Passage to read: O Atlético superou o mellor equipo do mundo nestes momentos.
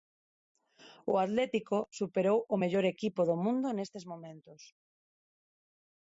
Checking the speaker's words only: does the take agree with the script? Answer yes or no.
yes